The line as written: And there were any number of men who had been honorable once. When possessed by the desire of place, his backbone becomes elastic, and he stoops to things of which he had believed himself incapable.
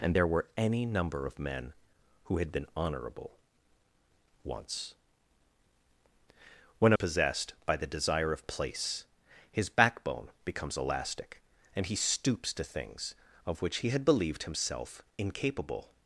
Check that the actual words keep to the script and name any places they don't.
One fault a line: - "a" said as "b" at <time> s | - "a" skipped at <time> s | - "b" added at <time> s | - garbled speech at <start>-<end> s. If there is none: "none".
none